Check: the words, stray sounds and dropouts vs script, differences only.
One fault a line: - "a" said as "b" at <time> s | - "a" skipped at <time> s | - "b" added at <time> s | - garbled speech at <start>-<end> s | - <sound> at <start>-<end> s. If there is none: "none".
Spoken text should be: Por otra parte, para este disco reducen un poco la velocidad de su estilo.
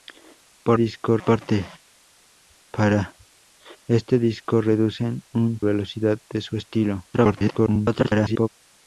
- "otra" said as "disco" at 0.7 s
- "poco la" skipped at 5.6 s
- garbled speech at 7.1-8.5 s